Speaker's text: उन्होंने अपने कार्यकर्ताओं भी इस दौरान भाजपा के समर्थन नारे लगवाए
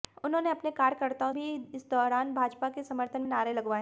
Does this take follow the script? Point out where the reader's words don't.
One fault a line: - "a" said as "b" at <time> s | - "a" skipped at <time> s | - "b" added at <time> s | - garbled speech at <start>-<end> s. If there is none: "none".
none